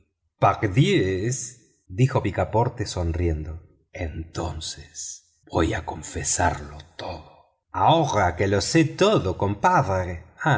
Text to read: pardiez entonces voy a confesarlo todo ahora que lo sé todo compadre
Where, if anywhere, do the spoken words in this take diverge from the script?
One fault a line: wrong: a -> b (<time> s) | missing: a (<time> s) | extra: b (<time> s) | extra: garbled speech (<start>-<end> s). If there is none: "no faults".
extra: dijo picaporte sonriendo (1.9 s)